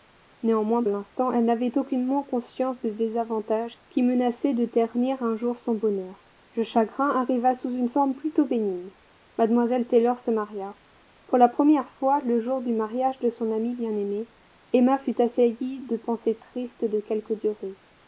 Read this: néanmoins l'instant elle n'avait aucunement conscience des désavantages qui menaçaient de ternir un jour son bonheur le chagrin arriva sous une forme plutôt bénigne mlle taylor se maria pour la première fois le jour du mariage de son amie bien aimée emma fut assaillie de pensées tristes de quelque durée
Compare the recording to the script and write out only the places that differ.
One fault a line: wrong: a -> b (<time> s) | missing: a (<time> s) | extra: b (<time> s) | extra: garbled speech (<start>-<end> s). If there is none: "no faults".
no faults